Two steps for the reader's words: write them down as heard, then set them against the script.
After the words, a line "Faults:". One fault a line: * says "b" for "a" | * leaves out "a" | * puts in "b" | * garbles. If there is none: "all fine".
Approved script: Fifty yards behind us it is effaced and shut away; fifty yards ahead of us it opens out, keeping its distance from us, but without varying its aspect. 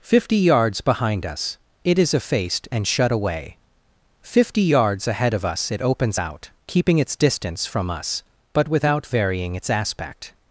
Fifty yards behind us it is effaced and shut away; fifty yards ahead of us it opens out, keeping its distance from us, but without varying its aspect.
Faults:
all fine